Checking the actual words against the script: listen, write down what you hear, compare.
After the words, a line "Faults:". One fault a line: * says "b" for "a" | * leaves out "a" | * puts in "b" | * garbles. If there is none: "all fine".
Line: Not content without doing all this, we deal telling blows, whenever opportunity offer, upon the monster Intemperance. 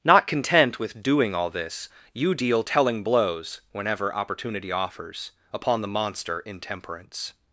Not content with doing all this, you deal telling blows, whenever opportunity offers, upon the monster Intemperance.
Faults:
* says "with" for "without"
* says "you" for "we"
* says "offers" for "offer"